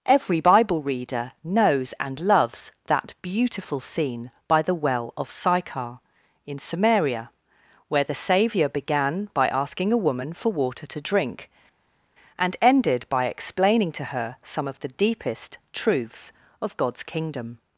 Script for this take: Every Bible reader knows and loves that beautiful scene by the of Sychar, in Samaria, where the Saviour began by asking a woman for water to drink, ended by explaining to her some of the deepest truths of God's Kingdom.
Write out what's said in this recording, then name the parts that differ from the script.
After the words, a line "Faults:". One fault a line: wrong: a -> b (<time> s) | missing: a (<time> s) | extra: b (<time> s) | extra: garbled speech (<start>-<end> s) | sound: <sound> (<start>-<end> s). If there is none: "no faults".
Every Bible reader knows and loves that beautiful scene by the well of Sychar, in Samaria, where the Saviour began by asking a woman for water to drink, and ended by explaining to her some of the deepest truths of God's Kingdom.
Faults:
extra: well (4.7 s)
extra: and (12.4 s)